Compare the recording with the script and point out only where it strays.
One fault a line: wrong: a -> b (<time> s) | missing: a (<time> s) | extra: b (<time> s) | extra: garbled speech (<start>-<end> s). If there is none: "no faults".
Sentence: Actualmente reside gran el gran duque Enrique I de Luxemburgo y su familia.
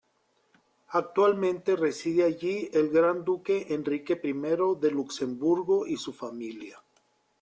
wrong: gran -> allí (2.2 s)